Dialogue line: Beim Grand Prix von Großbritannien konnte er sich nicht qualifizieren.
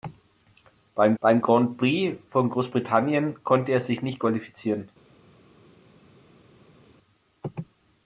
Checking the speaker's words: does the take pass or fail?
fail